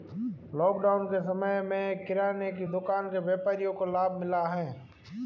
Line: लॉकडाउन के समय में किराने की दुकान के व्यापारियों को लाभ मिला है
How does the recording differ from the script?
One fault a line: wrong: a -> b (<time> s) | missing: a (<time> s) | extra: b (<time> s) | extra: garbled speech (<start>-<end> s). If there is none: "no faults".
no faults